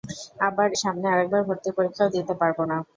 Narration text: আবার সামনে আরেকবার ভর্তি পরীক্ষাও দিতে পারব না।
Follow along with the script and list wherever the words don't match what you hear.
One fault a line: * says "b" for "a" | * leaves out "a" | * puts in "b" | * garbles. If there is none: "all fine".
all fine